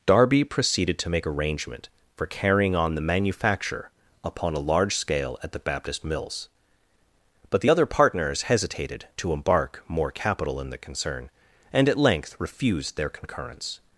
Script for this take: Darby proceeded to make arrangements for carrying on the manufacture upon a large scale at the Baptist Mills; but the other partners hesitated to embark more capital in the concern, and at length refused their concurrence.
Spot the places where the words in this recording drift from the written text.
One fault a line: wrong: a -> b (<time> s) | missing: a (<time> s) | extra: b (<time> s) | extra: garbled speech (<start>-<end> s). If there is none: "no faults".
wrong: arrangements -> arrangement (1.3 s)